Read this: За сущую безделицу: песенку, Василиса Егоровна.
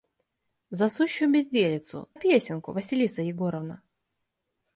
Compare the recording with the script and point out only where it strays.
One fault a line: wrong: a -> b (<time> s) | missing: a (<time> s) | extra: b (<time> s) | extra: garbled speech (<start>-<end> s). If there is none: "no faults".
no faults